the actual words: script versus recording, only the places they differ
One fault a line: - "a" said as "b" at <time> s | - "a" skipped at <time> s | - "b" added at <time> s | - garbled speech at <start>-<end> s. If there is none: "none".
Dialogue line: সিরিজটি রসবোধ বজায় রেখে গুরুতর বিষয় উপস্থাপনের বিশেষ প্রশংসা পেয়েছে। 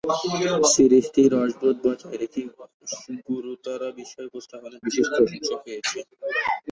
none